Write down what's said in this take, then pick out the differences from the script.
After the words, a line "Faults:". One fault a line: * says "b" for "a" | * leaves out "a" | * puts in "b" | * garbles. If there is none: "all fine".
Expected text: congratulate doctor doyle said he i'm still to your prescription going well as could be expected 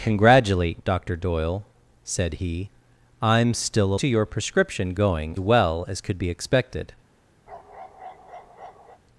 congratulate doctor doyle said he i'm still to your prescription going well as could be expected
Faults:
all fine